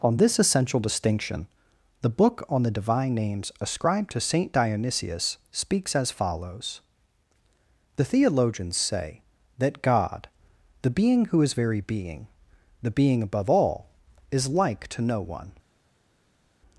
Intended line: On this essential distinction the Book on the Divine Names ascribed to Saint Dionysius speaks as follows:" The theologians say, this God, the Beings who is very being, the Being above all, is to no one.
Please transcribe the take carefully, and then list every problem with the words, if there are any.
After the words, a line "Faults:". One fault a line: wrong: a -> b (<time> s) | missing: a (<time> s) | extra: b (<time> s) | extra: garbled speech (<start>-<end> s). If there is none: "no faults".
On this essential distinction the Book on the Divine Names ascribed to Saint Dionysius speaks as follows:" The theologians say, that God, the Being who is very being, the Being above all, is like to no one.
Faults:
wrong: this -> that (9.6 s)
wrong: Beings -> Being (10.9 s)
extra: like (14.5 s)